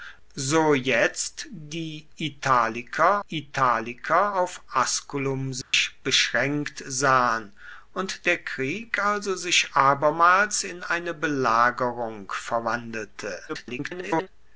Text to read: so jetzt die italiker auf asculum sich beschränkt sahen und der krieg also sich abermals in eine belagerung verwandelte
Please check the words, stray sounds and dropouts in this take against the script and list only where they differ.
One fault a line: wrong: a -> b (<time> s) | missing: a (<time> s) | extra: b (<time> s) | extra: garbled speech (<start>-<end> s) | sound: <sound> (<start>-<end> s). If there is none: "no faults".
extra: italiker (3.3 s)
sound: dropout (5.6-5.7 s)
extra: garbled speech (13.5-14.3 s)